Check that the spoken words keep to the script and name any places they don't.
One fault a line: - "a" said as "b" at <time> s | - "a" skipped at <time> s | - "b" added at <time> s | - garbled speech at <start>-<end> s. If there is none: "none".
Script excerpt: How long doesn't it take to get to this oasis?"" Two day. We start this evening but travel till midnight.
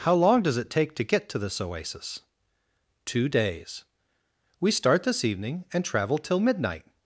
- "doesn't" said as "does" at 0.4 s
- "day" said as "days" at 3.3 s
- "but" said as "and" at 5.7 s